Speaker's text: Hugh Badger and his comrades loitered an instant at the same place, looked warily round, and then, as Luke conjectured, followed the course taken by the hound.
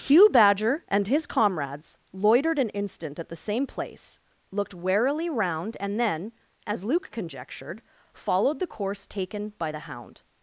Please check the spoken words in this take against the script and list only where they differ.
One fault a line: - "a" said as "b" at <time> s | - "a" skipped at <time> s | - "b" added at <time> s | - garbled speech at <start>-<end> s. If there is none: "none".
none